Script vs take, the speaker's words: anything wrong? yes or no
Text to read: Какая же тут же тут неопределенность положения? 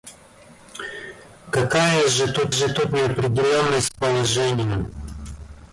no